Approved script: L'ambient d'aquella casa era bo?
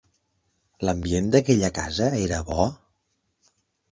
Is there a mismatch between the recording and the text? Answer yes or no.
no